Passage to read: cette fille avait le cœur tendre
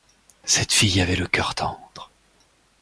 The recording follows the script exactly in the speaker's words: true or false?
true